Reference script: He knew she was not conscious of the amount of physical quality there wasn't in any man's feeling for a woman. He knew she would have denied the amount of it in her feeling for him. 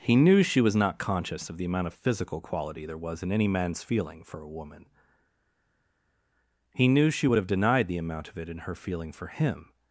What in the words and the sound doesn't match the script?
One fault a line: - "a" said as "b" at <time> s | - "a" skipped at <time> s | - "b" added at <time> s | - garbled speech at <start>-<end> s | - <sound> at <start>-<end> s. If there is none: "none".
- "wasn't" said as "was" at 3.0 s